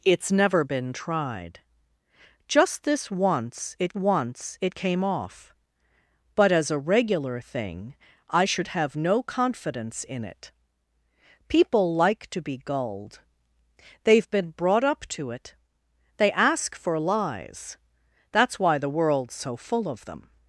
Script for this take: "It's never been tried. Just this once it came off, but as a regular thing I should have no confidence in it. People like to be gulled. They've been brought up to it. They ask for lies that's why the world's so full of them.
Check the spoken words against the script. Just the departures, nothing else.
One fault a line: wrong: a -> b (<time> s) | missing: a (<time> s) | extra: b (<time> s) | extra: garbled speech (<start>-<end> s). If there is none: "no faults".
extra: once it (4.0 s)